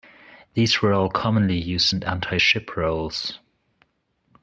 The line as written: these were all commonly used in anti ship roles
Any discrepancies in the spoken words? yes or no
no